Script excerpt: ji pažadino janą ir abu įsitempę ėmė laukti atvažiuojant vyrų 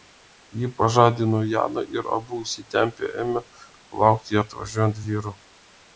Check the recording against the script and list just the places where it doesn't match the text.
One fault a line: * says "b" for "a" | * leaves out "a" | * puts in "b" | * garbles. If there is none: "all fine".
all fine